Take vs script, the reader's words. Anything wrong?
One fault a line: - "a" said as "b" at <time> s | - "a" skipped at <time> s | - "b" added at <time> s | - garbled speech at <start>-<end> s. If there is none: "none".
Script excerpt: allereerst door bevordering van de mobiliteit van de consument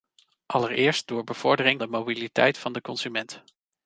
- "van" skipped at 1.8 s